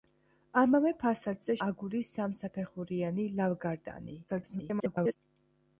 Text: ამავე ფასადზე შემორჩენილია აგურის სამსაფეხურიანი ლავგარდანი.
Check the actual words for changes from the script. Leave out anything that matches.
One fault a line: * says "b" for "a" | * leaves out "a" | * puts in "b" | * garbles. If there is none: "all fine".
* leaves out "შემორჩენილია"
* garbles